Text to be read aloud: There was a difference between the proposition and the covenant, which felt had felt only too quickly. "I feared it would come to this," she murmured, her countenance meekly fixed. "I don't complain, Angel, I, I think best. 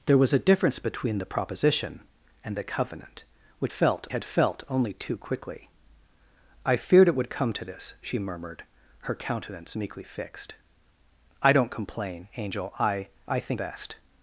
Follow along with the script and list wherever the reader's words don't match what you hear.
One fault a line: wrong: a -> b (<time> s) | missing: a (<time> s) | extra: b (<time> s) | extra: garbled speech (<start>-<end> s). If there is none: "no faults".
no faults